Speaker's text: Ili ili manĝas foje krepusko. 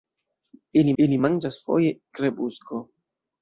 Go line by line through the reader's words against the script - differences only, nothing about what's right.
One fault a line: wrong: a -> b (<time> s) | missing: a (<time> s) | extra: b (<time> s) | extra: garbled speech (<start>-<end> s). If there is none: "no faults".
no faults